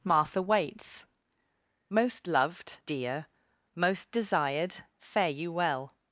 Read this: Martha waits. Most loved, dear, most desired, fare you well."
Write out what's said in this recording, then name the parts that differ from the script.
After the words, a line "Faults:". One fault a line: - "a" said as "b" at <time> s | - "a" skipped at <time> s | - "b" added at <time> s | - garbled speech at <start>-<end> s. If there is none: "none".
Martha waits. Most loved, dear, most desired, fare you well."
Faults:
none